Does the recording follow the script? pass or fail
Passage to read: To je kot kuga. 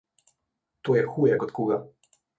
fail